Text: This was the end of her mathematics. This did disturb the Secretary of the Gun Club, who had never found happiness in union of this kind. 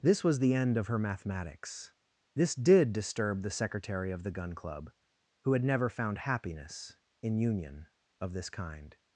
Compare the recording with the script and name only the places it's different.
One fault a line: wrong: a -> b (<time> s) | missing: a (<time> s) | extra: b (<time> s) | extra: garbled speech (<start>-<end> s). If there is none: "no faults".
no faults